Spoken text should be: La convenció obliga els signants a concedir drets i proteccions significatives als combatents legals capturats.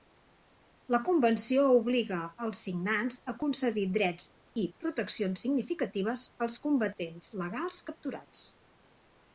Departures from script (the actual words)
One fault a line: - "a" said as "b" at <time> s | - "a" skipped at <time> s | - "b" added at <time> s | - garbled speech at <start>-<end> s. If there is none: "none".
none